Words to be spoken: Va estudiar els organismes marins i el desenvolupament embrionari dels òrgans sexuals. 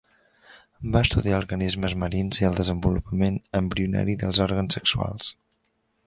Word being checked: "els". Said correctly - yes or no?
no